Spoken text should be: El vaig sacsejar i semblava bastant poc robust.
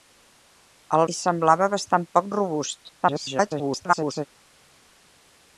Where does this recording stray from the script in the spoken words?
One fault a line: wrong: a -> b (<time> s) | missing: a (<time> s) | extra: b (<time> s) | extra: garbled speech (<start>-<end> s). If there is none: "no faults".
missing: vaig sacsejar (1.0 s)
extra: garbled speech (3.0-4.3 s)